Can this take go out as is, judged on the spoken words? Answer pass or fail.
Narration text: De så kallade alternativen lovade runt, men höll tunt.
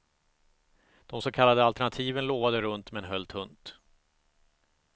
pass